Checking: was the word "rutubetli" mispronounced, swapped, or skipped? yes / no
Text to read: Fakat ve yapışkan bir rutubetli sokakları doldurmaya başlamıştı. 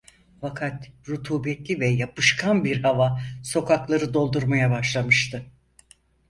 yes